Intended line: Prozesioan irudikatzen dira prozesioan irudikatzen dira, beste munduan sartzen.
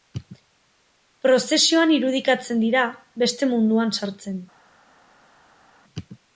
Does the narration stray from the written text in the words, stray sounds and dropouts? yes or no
yes